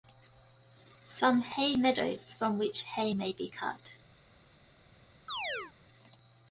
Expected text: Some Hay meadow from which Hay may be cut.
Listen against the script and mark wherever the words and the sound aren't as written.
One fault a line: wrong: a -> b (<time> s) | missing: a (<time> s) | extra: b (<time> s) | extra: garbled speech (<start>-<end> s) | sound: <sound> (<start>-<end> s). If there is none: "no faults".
sound: chirp (5.3-5.7 s)